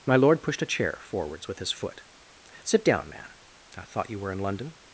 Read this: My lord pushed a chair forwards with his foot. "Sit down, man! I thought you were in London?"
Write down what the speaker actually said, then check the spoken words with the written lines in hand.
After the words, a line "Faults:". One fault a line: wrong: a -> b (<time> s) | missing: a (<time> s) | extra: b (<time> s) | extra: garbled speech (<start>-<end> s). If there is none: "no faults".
My lord pushed a chair forwards with his foot. "Sit down, man! I thought you were in London?"
Faults:
no faults